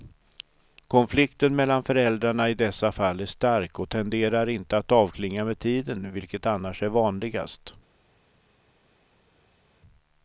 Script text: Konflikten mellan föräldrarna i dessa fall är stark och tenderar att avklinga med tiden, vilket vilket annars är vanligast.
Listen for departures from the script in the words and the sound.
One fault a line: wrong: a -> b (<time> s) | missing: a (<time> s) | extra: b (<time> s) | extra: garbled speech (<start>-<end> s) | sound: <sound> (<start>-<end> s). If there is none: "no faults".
extra: inte (4.5 s)
missing: vilket (6.5 s)